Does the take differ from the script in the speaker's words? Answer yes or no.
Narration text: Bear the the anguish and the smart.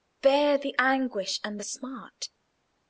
yes